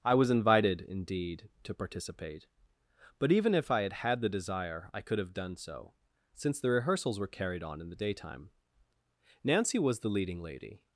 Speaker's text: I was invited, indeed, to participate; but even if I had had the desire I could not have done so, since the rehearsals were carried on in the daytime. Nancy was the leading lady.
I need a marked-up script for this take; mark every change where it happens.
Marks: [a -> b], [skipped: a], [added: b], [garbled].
I was invited, indeed, to participate; but even if I had had the desire I could [skipped: not] have done so, since the rehearsals were carried on in the daytime. Nancy was the leading lady.